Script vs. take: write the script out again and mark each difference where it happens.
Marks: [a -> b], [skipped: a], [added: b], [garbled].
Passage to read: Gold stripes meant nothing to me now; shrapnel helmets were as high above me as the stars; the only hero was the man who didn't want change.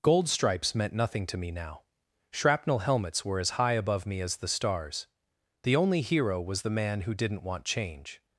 Gold stripes meant nothing to me now; shrapnel helmets were as high above me as the stars; the only hero was the man who didn't want change.